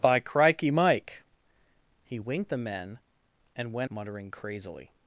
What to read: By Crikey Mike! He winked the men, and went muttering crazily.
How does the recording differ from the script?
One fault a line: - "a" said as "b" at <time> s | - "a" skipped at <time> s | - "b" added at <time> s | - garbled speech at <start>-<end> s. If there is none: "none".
none